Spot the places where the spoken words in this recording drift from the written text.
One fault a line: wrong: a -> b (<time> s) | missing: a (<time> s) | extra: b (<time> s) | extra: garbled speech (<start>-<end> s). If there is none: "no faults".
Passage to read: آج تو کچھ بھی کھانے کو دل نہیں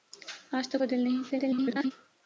missing: کچھ بھی کھانے (0.8 s)
extra: garbled speech (1.3-1.9 s)